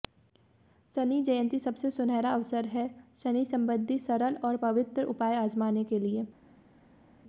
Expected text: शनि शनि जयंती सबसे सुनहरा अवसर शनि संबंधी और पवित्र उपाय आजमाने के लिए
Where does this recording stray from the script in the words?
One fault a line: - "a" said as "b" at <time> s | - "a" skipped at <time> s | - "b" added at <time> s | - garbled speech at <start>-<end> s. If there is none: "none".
- "शनि" skipped at 1.2 s
- "है" added at 2.7 s
- "सरल" added at 4.0 s